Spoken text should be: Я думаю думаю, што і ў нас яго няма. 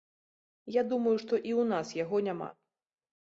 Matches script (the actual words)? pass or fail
fail